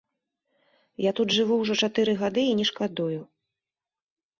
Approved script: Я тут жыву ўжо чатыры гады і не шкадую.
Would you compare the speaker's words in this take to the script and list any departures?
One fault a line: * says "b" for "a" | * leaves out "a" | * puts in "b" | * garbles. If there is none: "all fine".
all fine